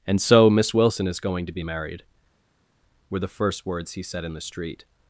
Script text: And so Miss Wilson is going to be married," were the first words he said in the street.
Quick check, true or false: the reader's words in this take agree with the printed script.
true